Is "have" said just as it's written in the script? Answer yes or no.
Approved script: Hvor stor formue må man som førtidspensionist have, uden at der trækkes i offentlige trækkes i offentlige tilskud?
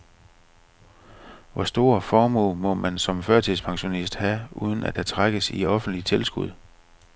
yes